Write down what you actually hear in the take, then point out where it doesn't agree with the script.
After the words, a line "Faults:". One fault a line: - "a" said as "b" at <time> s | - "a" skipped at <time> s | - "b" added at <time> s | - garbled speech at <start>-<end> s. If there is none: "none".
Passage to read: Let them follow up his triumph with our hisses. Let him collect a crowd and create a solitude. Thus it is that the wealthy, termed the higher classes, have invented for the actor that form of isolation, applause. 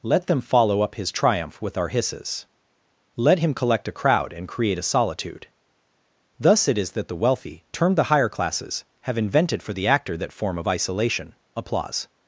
Let them follow up his triumph with our hisses. Let him collect a crowd and create a solitude. Thus it is that the wealthy, termed the higher classes, have invented for the actor that form of isolation, applause.
Faults:
none